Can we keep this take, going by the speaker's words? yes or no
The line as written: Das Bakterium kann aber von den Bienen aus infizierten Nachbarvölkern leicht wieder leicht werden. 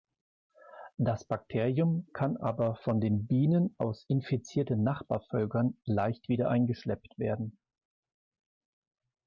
no